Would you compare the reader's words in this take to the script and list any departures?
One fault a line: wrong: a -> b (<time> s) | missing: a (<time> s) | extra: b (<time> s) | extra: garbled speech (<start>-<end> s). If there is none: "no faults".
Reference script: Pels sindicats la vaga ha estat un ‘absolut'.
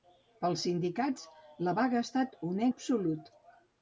no faults